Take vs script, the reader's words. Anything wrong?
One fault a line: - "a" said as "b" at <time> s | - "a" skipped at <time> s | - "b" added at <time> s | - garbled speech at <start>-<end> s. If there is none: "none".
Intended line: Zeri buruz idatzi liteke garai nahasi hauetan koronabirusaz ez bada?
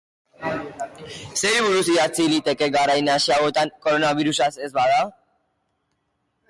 none